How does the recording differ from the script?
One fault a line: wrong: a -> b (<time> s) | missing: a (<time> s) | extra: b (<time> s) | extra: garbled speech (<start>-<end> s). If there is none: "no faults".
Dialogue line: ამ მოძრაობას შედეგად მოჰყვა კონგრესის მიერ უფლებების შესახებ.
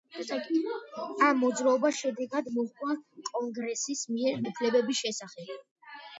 no faults